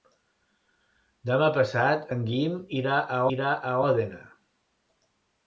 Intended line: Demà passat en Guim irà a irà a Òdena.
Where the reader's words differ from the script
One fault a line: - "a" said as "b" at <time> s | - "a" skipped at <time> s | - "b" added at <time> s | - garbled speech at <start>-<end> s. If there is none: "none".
none